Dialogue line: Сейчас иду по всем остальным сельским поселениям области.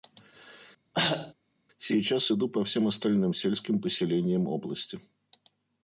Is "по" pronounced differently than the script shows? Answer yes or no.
no